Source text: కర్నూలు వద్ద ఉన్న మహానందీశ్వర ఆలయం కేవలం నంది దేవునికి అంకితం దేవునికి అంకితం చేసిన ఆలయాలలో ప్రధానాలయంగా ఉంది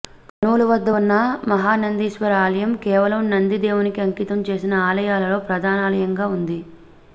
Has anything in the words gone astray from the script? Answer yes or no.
yes